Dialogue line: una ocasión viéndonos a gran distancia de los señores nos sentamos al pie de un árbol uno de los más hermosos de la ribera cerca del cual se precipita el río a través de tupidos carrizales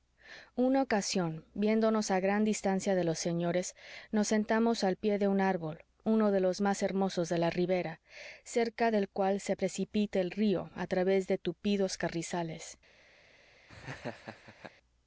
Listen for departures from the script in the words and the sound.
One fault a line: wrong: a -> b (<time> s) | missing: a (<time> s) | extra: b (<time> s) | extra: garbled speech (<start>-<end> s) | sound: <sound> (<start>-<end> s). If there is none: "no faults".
sound: laugh (13.7-14.7 s)